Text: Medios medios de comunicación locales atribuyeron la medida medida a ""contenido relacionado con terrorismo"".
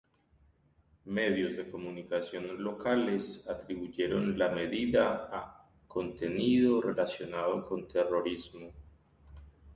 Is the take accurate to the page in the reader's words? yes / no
no